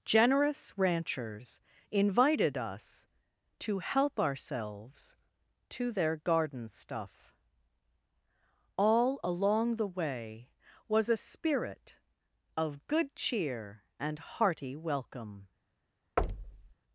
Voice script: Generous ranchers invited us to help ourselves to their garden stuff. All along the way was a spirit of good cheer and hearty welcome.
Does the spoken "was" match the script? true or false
true